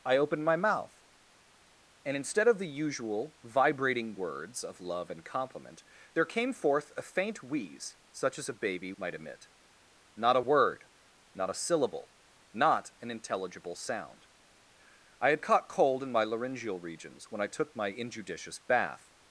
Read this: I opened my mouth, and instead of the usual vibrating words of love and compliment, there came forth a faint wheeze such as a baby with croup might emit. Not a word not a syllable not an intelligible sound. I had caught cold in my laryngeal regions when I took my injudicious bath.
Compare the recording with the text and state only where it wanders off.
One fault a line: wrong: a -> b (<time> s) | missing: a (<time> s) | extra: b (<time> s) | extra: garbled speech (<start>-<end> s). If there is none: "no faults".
missing: with croup (8.9 s)